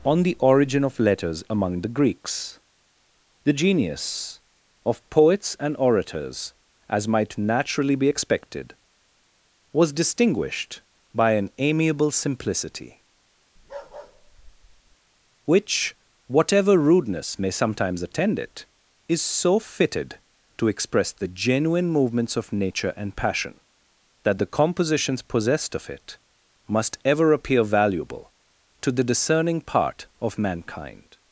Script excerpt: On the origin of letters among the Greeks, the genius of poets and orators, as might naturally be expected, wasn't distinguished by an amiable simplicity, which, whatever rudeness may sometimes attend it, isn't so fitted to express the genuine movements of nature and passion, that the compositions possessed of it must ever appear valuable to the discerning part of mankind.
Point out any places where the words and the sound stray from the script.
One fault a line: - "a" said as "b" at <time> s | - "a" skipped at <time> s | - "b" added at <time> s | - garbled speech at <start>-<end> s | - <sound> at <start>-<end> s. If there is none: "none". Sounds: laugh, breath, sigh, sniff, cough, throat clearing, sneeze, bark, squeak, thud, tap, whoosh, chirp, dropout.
- "wasn't" said as "was" at 9.7 s
- bark at 13.6-15.0 s
- "isn't" said as "is" at 19.1 s